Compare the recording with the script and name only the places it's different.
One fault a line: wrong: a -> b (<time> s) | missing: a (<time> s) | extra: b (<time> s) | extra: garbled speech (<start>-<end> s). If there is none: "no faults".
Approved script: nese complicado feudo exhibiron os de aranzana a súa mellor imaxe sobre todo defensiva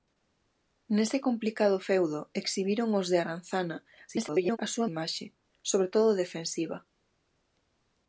extra: garbled speech (4.1-4.6 s)
missing: mellor (4.9 s)